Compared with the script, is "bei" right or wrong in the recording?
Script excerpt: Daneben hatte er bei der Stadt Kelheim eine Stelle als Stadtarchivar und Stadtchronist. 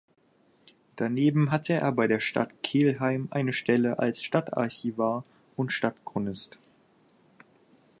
right